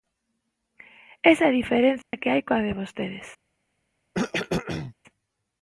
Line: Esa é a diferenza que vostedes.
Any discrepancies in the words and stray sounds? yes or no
yes